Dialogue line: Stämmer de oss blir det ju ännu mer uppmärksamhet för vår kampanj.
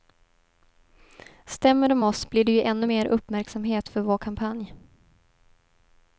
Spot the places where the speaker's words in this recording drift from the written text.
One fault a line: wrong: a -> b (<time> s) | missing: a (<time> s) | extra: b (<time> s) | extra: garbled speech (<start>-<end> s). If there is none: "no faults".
no faults